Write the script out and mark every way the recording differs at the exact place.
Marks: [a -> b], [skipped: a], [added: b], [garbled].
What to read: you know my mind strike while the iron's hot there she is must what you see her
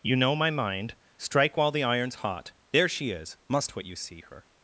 you know my mind strike while the iron's hot there she is must what you see her